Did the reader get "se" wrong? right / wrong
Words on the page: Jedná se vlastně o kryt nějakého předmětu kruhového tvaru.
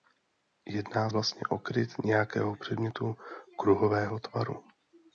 wrong